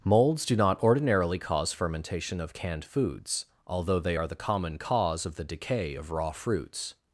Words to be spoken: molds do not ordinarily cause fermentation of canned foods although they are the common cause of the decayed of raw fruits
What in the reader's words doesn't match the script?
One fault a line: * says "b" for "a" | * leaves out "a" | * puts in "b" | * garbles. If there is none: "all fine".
* says "decay" for "decayed"